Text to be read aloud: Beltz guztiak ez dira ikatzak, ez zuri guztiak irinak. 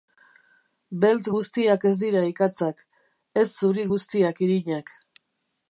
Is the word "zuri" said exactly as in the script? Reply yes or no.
yes